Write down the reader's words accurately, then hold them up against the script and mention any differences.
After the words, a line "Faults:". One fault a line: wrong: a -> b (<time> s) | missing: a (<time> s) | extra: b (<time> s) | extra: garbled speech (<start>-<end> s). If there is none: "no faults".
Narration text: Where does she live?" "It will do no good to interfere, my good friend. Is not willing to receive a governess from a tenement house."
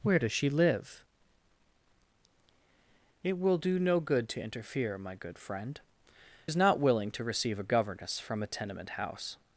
Where does she live?" "It will do no good to interfere, my good friend. Is not willing to receive a governess from a tenement house."
Faults:
no faults